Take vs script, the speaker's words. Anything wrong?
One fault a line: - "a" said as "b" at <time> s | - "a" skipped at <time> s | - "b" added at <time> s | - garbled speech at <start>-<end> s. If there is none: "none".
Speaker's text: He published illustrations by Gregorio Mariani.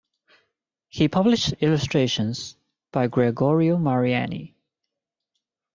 none